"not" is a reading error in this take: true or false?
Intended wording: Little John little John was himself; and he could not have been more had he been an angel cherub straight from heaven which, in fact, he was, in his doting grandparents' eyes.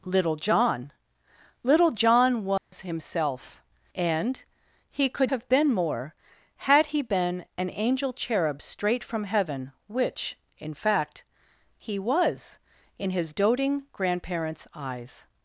true